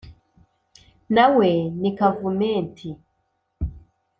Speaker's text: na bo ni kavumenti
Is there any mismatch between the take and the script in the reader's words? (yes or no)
yes